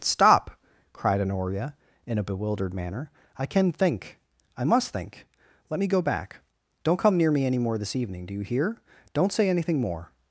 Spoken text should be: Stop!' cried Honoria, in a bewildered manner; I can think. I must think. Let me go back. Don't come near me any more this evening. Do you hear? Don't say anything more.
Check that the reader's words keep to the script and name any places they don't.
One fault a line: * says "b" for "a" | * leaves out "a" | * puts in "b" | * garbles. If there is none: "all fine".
all fine